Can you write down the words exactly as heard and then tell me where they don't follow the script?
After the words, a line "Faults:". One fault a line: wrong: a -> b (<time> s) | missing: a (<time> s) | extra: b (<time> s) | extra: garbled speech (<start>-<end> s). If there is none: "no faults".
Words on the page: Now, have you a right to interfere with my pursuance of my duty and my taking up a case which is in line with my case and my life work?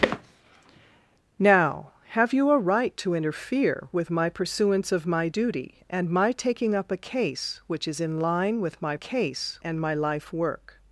Now, have you a right to interfere with my pursuance of my duty and my taking up a case which is in line with my case and my life work?
Faults:
no faults